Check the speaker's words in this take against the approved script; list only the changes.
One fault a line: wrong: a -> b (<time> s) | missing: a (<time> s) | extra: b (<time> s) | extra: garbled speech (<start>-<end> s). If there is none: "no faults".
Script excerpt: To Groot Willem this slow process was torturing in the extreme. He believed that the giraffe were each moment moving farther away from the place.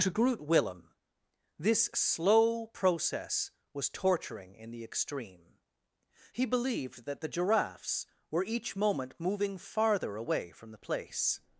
wrong: giraffe -> giraffes (7.3 s)